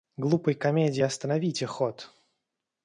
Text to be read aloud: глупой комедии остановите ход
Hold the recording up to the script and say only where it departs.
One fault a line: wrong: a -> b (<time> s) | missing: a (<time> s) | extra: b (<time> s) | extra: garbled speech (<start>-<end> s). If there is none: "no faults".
no faults